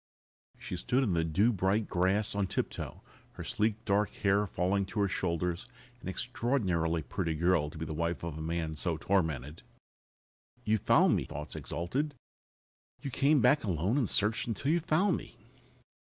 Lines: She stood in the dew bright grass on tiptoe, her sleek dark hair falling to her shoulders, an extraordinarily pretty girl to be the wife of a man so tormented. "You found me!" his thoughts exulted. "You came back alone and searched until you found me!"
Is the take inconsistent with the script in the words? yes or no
yes